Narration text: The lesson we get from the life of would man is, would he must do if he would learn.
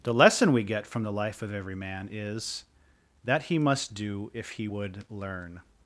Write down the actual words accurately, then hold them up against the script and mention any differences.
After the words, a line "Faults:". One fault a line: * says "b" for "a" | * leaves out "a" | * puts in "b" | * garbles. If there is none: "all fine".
The lesson we get from the life of every man is, that he must do if he would learn.
Faults:
* says "every" for "would"
* says "that" for "would"